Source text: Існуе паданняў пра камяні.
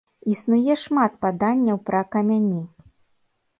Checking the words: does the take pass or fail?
fail